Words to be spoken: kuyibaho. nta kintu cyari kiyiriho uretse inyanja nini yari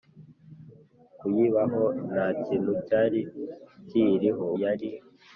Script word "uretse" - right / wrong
wrong